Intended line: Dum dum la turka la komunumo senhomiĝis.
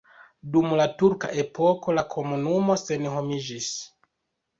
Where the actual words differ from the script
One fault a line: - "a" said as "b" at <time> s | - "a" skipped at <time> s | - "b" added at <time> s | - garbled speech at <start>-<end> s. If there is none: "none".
- "dum" skipped at 0.7 s
- "epoko" added at 1.4 s